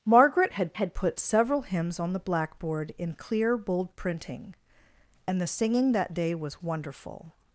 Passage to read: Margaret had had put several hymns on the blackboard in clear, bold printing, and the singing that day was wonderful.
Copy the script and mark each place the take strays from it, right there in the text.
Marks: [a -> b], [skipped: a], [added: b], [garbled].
Margaret had had put several hymns on the blackboard in clear, bold printing, and the singing that day was wonderful.